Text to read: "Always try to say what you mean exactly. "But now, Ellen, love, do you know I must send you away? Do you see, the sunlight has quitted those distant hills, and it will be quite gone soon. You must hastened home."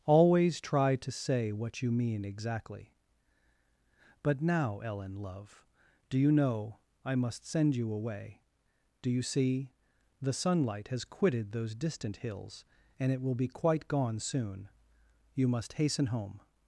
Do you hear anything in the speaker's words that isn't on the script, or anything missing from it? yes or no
yes